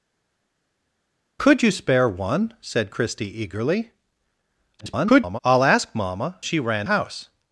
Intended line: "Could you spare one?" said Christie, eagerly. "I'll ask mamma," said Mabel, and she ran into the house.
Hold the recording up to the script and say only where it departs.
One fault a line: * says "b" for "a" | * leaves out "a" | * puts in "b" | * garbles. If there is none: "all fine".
* garbles
* leaves out "said Mabel and"
* leaves out "into the"